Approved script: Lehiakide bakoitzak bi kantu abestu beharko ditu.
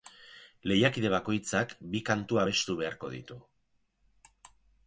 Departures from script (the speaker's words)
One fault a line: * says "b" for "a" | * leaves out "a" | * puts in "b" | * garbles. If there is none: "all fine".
all fine